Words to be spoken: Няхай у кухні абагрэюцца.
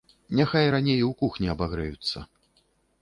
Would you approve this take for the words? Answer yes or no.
no